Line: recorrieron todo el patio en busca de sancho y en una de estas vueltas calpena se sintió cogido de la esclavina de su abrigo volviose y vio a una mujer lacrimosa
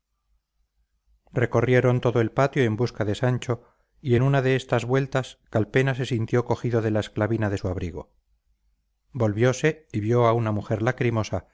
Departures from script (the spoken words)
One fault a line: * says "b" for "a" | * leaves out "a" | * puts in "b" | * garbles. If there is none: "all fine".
all fine